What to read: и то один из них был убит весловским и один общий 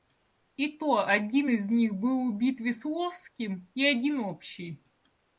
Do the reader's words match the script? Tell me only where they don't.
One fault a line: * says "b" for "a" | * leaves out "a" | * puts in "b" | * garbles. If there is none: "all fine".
all fine